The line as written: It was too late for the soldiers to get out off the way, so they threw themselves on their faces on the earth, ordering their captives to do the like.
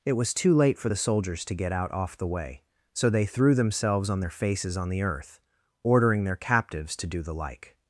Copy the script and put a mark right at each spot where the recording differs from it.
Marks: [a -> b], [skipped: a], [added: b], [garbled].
It was too late for the soldiers to get out off the way, so they threw themselves on their faces on the earth, ordering their captives to do the like.